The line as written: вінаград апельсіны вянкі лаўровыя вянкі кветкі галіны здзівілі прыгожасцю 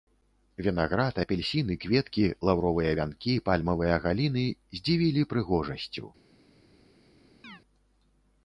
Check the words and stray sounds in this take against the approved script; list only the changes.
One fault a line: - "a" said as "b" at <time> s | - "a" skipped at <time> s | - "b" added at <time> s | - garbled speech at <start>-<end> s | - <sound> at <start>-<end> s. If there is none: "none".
- "вянкі" said as "кветкі" at 1.8 s
- "кветкі" said as "пальмавыя" at 3.5 s
- chirp at 7.4-7.6 s